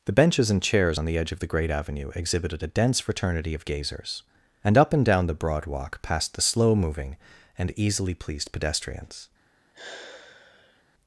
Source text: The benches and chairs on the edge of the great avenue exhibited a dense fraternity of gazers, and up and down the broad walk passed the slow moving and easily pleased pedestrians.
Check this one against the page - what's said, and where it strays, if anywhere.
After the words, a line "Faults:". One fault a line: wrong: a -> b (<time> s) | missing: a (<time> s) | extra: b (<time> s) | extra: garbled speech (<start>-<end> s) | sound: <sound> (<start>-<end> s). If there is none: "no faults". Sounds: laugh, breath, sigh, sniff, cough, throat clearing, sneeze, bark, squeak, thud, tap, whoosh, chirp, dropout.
The benches and chairs on the edge of the great avenue exhibited a dense fraternity of gazers, and up and down the broad walk passed the slow moving and easily pleased pedestrians.
Faults:
sound: sigh (9.7-10.8 s)